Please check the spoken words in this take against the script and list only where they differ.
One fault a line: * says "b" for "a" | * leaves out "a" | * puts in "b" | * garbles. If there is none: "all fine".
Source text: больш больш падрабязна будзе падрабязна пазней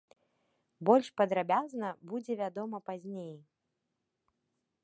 * leaves out "больш"
* says "вядома" for "падрабязна"